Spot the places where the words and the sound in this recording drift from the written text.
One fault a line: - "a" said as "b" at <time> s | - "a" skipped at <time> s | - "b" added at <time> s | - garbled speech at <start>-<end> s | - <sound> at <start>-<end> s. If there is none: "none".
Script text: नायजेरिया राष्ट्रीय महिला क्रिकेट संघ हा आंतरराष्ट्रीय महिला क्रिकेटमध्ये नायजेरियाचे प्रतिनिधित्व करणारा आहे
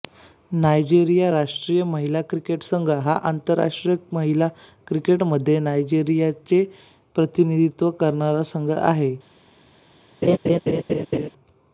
- "संघ" added at 8.5 s
- laugh at 10.2-11.3 s